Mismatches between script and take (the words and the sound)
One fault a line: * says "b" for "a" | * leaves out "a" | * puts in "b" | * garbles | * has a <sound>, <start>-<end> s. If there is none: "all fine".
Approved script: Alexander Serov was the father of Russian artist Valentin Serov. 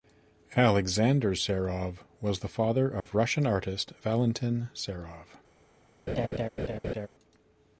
* has a dropout, 3.0-3.1 s
* has a laugh, 6.1-7.1 s